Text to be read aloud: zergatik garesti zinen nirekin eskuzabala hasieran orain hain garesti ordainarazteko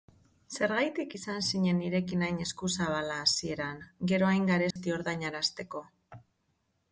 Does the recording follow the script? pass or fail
fail